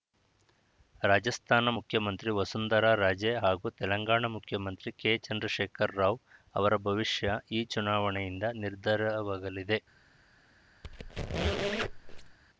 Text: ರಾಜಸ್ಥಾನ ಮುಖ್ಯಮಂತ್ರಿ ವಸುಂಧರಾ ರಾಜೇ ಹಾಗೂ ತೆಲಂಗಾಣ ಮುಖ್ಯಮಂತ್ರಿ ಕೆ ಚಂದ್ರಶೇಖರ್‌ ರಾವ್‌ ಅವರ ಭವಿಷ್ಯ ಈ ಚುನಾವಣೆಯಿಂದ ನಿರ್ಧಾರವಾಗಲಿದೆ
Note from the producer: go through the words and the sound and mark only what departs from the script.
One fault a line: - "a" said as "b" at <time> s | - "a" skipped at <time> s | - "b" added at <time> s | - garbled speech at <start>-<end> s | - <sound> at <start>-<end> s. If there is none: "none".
- squeak at 10.8-12.4 s